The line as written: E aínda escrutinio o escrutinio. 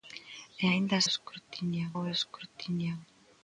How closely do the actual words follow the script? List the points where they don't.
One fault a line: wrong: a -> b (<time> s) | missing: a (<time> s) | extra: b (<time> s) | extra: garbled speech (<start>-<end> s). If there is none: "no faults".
no faults